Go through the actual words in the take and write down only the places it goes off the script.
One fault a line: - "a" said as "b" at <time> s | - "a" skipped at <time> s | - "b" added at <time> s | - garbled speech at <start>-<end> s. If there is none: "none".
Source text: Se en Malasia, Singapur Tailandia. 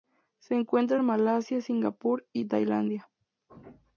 - "encuentra" added at 0.6 s
- "y" added at 2.3 s